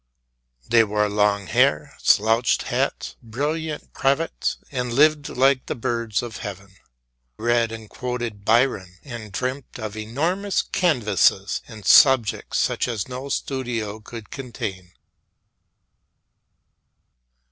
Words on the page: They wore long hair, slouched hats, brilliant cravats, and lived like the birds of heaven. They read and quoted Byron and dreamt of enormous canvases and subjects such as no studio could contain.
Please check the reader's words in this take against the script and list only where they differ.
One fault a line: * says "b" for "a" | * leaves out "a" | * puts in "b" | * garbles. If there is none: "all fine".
* leaves out "They"